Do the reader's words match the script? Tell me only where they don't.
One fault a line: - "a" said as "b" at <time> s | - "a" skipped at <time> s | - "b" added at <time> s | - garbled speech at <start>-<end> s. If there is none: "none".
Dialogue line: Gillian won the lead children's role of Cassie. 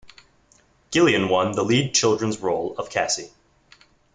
none